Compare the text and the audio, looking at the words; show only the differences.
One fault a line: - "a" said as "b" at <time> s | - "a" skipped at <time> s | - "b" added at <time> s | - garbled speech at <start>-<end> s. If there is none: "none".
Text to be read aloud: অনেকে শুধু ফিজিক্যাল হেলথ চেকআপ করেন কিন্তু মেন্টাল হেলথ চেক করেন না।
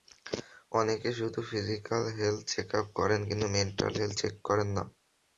none